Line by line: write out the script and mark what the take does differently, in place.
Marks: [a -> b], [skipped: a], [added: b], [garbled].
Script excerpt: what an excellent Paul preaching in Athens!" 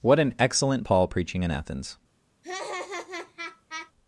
what an excellent Paul preaching in Athens!"